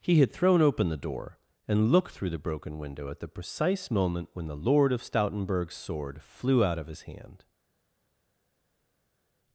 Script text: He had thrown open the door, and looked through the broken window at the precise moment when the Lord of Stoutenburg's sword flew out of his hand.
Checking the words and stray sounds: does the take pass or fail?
pass